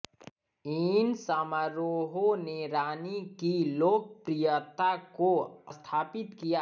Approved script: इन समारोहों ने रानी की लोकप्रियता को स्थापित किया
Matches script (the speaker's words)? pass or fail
pass